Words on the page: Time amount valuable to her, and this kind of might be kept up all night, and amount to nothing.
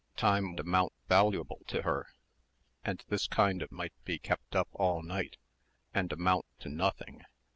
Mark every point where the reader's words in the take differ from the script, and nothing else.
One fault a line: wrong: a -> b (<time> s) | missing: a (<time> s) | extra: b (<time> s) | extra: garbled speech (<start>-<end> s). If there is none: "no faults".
no faults